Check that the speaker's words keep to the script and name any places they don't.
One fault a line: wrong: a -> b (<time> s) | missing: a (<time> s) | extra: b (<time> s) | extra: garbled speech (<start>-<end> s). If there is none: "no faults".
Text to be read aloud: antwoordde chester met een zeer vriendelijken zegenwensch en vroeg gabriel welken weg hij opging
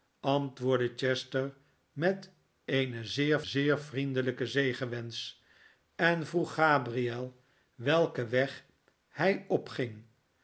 extra: zeer (3.4 s)